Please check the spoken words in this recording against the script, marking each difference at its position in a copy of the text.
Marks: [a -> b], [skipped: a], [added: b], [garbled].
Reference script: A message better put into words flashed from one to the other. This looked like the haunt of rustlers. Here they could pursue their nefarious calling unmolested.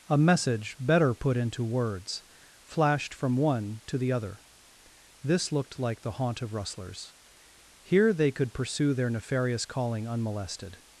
A message better put into words flashed from one to the other. This looked like the haunt of rustlers. Here they could pursue their nefarious calling unmolested.